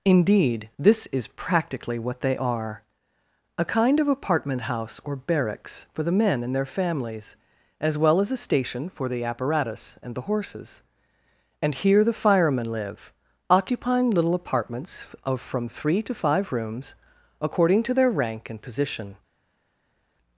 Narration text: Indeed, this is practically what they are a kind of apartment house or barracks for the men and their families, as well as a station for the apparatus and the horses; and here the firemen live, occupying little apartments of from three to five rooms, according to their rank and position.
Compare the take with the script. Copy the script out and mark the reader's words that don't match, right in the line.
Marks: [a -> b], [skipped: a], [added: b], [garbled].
Indeed, this is practically what they are a kind of apartment house or barracks for the men and their families, as well as a station for the apparatus and the horses; and here the firemen live, occupying little apartments of from three to five rooms, according to their rank and position.